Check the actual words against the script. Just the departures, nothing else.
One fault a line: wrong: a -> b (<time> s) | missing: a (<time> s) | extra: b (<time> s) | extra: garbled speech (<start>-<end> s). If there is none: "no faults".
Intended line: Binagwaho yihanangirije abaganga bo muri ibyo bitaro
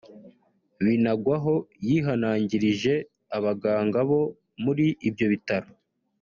no faults